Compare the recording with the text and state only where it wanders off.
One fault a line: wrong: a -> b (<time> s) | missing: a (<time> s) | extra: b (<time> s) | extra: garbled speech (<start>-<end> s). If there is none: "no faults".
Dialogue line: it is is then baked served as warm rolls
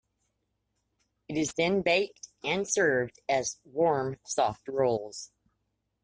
missing: is (1.5 s)
extra: and (2.4 s)
extra: soft (4.2 s)